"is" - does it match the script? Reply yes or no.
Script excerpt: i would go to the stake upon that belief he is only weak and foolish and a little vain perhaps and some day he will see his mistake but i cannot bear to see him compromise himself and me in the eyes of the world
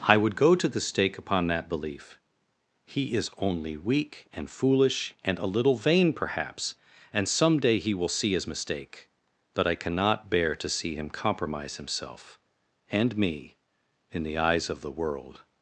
yes